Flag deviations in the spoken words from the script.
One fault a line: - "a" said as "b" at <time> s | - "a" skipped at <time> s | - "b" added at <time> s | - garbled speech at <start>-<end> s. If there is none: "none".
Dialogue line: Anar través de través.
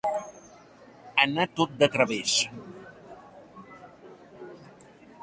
- "través" said as "tot" at 1.6 s